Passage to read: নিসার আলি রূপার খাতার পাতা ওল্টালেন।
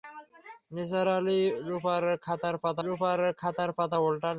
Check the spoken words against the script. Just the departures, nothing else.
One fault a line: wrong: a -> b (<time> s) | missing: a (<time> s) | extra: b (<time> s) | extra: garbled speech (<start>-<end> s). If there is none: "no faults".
extra: রূপার খাতার পাতা (2.8 s)